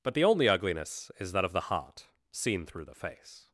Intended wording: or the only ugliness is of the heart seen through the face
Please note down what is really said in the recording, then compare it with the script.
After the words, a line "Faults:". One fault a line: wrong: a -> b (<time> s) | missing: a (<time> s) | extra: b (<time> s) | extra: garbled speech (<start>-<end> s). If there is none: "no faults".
but the only ugliness is that of the heart seen through the face
Faults:
wrong: or -> but (0.0 s)
extra: that (1.3 s)